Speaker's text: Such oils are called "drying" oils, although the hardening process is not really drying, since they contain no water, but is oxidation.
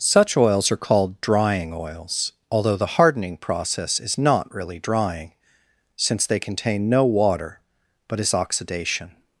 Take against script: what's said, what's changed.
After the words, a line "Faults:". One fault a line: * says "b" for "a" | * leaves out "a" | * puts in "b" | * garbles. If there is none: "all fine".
Such oils are called "drying" oils, although the hardening process is not really drying, since they contain no water, but is oxidation.
Faults:
all fine